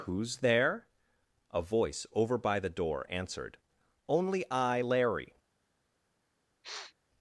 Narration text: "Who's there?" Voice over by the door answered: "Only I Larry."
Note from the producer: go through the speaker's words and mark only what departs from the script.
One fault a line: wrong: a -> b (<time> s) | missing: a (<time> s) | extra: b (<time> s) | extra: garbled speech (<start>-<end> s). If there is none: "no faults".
extra: A (1.5 s)